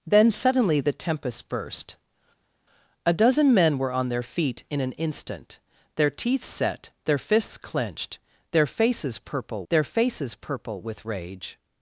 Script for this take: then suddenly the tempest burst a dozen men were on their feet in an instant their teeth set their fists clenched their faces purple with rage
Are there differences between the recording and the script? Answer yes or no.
yes